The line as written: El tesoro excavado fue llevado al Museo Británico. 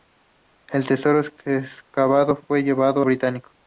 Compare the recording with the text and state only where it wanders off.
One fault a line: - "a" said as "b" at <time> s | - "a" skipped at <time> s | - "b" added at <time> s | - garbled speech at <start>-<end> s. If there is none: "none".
- "al Museo" skipped at 3.0 s